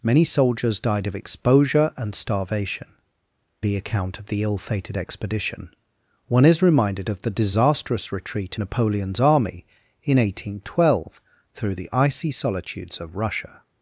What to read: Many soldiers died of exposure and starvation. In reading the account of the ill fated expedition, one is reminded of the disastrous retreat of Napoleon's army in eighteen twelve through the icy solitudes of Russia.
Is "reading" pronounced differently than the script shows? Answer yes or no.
yes